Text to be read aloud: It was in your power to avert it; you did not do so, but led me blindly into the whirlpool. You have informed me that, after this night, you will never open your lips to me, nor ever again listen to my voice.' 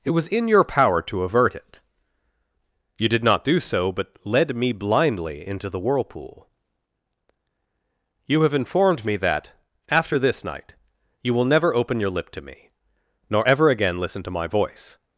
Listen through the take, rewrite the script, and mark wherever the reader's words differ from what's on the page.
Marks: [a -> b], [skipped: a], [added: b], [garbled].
It was in your power to avert it; you did not do so, but led me blindly into the whirlpool. You have informed me that, after this night, you will never open your [lips -> lip] to me, nor ever again listen to my voice.'